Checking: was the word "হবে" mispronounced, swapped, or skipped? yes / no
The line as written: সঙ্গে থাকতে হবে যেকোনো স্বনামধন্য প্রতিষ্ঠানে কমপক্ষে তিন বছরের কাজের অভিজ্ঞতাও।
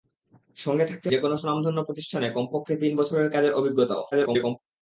yes